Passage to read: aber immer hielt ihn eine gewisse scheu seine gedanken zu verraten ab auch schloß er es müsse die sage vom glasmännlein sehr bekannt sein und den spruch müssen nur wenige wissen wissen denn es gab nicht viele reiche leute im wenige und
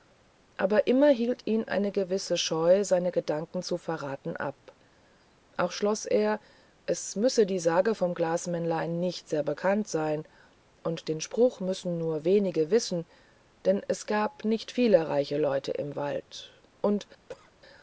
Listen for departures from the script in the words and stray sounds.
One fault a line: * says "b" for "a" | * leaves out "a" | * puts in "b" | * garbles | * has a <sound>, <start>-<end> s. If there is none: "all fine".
* puts in "nicht"
* leaves out "wissen"
* says "wald" for "wenige"
* has a cough, 17.3-17.5 s